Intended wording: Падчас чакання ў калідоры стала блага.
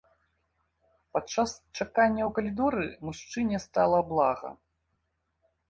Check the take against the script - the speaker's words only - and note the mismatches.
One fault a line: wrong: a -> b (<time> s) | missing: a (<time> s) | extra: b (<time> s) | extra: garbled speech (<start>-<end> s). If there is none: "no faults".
extra: мужчыне (3.1 s)